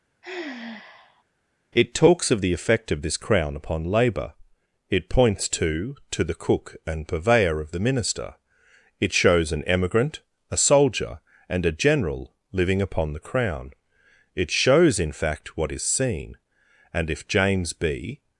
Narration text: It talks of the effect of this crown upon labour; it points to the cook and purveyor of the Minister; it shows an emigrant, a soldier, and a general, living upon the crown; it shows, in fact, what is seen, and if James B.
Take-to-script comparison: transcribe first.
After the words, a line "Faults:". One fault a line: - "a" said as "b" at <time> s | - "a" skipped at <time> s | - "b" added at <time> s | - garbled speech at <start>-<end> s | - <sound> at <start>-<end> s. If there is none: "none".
It talks of the effect of this crown upon labour; it points to to the cook and purveyor of the Minister; it shows an emigrant, a soldier, and a general, living upon the crown; it shows, in fact, what is seen, and if James B.
Faults:
- sigh at 0.2-1.2 s
- "to" added at 6.1 s